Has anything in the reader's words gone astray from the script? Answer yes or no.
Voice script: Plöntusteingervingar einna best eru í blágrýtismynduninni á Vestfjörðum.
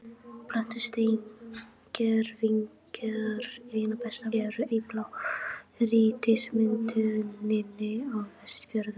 no